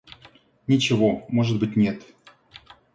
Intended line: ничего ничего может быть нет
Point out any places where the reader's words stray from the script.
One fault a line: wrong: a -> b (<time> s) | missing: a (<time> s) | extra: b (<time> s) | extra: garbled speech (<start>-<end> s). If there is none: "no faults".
missing: ничего (1.3 s)